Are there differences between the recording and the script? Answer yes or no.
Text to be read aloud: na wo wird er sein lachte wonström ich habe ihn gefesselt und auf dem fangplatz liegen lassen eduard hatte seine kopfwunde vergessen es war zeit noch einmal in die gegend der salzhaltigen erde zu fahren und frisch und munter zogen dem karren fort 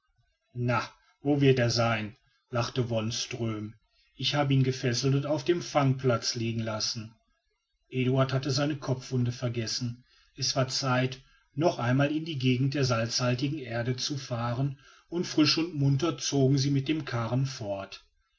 yes